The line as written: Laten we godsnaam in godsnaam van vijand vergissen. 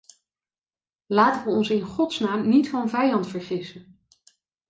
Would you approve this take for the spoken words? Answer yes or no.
no